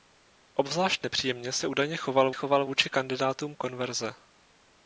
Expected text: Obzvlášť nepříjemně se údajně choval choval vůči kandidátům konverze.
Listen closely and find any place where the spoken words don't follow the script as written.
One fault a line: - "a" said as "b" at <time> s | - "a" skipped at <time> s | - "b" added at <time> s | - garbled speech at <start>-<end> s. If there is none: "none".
none